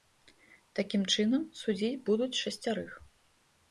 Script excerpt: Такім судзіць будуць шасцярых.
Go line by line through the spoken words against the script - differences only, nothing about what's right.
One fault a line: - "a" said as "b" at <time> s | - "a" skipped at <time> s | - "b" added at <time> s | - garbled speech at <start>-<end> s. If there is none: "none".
- "чынам" added at 1.2 s